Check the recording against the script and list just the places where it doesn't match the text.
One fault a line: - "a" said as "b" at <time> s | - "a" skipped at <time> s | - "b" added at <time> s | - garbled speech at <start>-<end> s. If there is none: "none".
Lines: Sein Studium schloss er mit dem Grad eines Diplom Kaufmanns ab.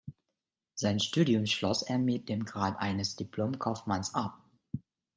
none